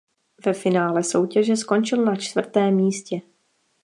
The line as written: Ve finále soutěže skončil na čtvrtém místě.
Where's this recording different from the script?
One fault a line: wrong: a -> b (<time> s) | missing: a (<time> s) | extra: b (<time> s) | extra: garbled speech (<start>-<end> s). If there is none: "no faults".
no faults